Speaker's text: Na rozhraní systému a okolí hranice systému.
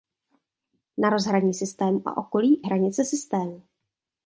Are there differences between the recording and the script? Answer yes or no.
no